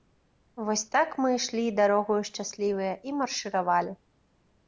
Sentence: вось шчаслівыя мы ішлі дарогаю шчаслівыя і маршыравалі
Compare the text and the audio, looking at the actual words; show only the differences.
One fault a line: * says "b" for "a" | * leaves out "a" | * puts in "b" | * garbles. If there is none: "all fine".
* says "так" for "шчаслівыя"